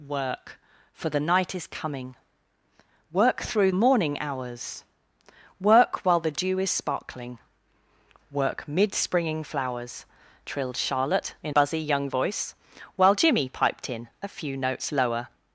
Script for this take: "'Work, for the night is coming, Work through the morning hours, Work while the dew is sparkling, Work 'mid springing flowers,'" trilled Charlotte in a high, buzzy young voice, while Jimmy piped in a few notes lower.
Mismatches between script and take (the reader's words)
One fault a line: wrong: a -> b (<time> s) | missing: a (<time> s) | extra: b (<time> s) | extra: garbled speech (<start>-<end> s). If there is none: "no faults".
missing: the (3.7 s)
missing: a high (11.5 s)